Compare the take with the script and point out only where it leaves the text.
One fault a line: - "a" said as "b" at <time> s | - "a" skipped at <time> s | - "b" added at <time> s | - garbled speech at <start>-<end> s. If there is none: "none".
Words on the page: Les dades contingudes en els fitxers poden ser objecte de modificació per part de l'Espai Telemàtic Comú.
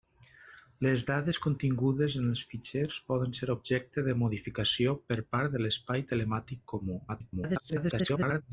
- garbled speech at 7.1-8.4 s